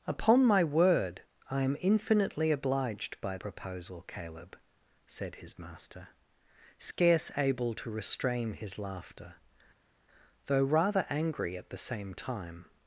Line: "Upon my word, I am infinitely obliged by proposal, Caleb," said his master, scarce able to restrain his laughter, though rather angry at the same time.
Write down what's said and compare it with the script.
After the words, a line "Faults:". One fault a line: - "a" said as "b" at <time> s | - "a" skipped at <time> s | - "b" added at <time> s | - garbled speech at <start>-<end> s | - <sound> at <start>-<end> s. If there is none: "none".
"Upon my word, I am infinitely obliged by proposal, Caleb," said his master, scarce able to restrain his laughter, though rather angry at the same time.
Faults:
none